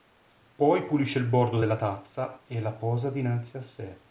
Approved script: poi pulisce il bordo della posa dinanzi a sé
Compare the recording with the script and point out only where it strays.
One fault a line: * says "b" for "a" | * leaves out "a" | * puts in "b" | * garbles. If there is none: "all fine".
* puts in "tazza e la"